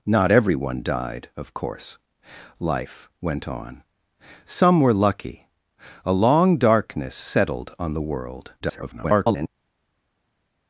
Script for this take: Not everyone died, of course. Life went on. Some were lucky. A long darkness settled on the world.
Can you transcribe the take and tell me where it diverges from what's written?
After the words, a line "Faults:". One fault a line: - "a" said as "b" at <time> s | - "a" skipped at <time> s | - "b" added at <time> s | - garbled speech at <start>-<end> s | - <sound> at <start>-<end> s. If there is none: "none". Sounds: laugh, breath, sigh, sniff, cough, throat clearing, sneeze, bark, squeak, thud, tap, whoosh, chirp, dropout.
Not everyone died, of course. Life went on. Some were lucky. A long darkness settled on the world. [garbled]
Faults:
- garbled speech at 8.6-9.5 s